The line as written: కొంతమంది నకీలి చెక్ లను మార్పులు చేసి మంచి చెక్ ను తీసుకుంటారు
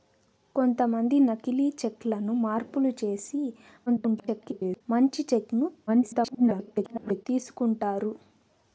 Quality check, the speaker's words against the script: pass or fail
fail